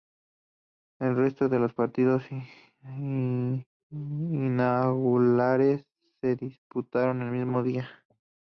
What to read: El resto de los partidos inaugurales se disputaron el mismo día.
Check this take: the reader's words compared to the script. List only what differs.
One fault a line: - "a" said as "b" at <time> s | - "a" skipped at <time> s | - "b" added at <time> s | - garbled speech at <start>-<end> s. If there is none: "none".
none